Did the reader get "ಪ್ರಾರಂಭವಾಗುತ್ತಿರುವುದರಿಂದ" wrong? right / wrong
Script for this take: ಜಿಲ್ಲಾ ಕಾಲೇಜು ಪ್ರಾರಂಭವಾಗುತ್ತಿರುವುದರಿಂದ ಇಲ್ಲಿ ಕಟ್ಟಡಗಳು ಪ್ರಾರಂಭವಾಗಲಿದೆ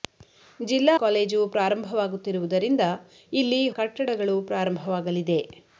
right